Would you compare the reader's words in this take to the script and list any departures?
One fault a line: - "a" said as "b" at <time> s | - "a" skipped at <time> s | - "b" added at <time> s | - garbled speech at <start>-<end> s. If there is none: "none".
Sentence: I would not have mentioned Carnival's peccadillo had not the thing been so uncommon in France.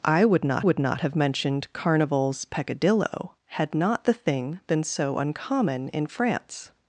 - "would not" added at 0.6 s